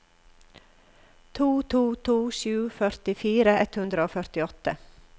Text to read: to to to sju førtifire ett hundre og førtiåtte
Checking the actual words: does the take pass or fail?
pass